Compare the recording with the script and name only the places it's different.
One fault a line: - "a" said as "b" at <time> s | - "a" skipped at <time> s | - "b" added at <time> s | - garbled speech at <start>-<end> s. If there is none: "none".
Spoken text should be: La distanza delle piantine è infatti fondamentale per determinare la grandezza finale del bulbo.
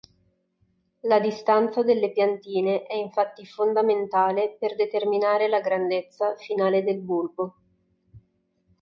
none